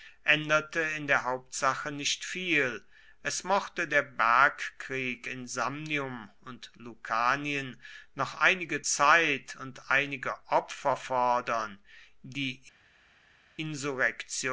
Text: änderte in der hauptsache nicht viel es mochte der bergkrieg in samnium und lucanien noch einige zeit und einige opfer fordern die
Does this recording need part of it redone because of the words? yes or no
no